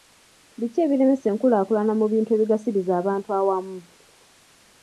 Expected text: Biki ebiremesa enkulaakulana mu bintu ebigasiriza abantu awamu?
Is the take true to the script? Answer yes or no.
yes